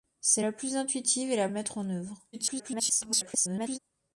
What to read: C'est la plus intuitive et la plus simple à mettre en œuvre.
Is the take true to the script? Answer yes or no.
no